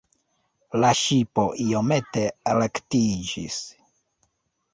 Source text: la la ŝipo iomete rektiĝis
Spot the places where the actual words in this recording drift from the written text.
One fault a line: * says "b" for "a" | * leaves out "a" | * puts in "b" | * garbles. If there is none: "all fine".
* leaves out "la"